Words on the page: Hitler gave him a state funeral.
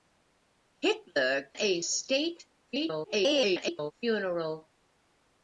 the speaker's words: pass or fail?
fail